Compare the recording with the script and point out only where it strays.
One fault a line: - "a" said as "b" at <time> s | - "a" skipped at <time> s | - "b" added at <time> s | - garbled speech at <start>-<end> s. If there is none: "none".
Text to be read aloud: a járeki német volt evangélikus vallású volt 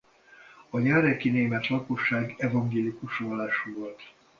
- "volt" said as "lakosság" at 1.7 s